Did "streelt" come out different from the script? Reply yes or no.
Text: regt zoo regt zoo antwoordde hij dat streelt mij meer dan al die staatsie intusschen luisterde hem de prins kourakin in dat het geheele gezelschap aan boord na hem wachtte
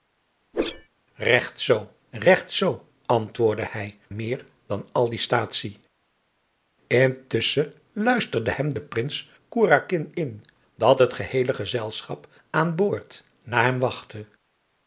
yes